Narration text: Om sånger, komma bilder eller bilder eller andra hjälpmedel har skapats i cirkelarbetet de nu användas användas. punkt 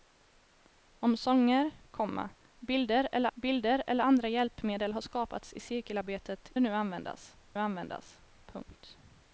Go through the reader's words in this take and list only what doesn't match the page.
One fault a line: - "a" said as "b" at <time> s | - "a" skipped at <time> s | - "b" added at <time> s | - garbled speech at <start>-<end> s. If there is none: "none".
none